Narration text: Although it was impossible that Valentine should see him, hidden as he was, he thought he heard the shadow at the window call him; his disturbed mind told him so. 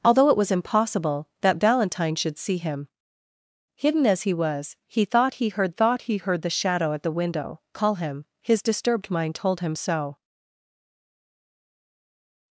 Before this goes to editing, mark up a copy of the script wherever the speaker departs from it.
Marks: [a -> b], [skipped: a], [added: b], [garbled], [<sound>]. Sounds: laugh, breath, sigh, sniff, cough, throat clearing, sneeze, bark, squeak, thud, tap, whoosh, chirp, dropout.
Although it was impossible that Valentine should see him, hidden as he was, he thought he heard [added: thought he heard] the shadow at the window call him; his disturbed mind told him so.